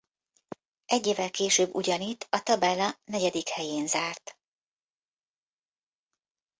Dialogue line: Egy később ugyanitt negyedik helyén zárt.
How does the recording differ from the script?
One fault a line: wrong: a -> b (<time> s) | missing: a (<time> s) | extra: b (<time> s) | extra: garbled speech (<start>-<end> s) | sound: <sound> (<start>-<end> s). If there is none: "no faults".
extra: évvel (1.1 s)
extra: a tabella (2.3 s)